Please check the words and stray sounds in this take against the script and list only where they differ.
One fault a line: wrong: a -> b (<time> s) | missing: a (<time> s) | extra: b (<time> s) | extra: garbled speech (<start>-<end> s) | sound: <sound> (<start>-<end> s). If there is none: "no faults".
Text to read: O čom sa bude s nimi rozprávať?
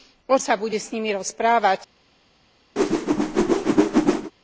missing: čom (0.4 s)
sound: whoosh (2.8-4.3 s)